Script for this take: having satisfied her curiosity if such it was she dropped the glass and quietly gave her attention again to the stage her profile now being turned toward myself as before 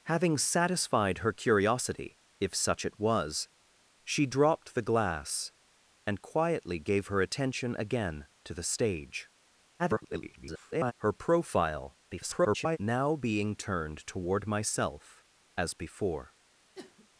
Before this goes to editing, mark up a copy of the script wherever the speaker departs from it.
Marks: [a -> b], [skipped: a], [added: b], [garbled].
having satisfied her curiosity if such it was she dropped the glass and quietly gave her attention again to the stage [garbled] her profile [garbled] now being turned toward myself as before